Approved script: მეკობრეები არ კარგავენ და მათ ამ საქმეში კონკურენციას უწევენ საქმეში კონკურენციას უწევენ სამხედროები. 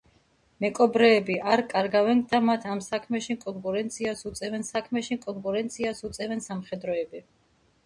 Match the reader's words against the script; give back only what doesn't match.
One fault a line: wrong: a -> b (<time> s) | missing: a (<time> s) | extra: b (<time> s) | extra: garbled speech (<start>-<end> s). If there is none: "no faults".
no faults